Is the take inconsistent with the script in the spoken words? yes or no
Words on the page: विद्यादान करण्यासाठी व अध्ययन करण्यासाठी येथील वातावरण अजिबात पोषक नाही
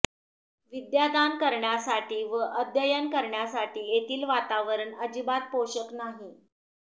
no